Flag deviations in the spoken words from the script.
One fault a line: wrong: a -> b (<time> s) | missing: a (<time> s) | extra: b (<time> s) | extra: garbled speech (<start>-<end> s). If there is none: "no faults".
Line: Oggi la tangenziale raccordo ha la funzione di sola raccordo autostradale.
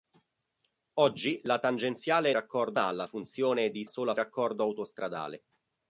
no faults